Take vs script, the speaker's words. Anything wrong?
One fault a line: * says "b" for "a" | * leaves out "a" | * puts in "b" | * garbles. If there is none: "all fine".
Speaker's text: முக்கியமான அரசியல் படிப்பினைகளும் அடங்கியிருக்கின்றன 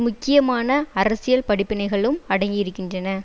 all fine